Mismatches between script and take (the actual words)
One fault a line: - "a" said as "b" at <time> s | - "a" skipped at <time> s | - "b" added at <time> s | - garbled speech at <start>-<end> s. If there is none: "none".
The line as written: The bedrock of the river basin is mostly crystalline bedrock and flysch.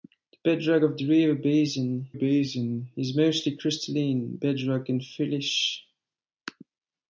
- "basin" added at 2.1 s